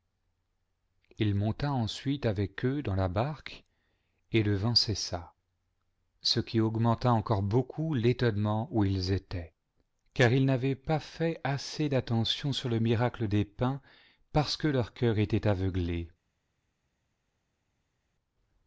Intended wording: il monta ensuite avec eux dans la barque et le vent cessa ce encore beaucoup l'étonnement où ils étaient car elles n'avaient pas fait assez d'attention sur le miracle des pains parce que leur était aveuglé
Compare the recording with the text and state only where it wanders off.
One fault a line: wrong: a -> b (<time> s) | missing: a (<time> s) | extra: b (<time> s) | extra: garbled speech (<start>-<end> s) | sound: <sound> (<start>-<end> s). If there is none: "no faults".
extra: qui augmenta (6.4 s)
wrong: elles -> ils (10.3 s)
extra: cœur (14.9 s)